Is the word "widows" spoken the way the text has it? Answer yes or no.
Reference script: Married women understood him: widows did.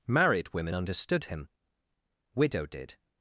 no